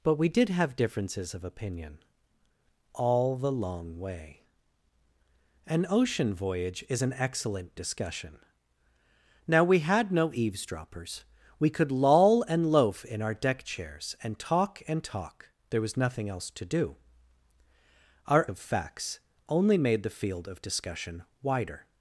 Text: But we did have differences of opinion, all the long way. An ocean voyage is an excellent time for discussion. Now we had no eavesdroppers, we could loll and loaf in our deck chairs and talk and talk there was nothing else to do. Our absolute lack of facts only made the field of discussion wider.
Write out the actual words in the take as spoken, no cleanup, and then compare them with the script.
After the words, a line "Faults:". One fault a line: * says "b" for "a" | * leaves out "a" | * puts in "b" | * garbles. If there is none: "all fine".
But we did have differences of opinion, all the long way. An ocean voyage is an excellent discussion. Now we had no eavesdroppers, we could loll and loaf in our deck chairs and talk and talk there was nothing else to do. Our of facts only made the field of discussion wider.
Faults:
* leaves out "time for"
* leaves out "absolute lack"